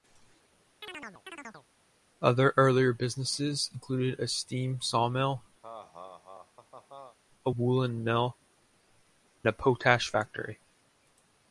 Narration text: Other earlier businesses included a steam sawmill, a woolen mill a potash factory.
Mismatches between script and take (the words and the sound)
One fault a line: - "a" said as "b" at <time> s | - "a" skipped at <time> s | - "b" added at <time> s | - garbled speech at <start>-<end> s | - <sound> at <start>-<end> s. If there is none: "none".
- chirp at 0.8-1.7 s
- laugh at 5.6-7.2 s